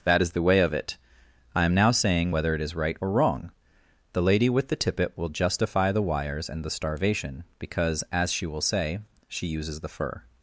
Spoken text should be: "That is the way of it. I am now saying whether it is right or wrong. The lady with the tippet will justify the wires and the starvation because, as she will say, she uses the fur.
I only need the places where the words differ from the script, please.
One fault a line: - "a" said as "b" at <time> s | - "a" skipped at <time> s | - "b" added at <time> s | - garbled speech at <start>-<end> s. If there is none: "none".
none